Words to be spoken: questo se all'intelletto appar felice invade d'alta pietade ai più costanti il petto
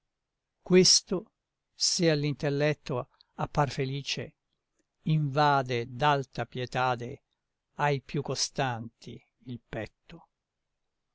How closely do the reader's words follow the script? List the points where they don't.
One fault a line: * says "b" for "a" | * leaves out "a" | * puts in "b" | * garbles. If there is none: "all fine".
all fine